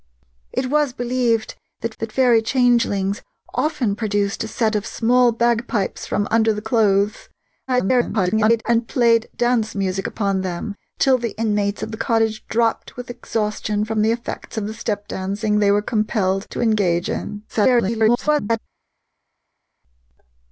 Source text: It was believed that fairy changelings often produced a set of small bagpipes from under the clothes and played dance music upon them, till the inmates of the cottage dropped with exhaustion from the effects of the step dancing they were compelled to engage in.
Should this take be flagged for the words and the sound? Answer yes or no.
yes